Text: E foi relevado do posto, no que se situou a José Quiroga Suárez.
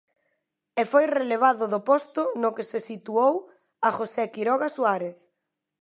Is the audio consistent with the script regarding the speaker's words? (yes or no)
yes